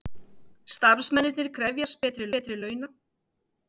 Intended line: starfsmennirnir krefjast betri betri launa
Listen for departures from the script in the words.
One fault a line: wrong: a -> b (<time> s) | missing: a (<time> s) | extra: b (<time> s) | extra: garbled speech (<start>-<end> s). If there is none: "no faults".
no faults